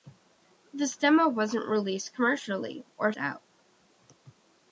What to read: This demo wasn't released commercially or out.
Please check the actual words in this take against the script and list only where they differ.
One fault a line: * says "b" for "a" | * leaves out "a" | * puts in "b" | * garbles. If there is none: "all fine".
all fine